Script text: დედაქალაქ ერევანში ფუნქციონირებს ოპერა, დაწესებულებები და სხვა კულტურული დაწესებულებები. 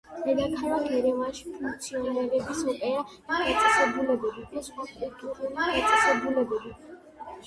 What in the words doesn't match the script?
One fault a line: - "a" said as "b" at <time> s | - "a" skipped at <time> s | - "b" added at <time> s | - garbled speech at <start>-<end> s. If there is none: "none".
none